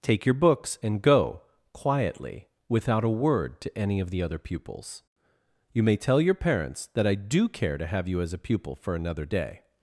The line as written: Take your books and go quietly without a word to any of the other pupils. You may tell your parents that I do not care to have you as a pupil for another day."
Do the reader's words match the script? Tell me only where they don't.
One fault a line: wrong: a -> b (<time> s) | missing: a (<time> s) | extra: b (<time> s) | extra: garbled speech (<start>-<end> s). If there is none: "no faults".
missing: not (7.5 s)